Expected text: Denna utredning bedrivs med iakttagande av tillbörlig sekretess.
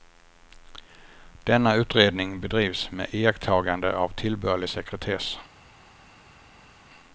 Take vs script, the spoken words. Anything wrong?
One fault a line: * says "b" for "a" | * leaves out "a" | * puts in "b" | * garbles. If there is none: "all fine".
all fine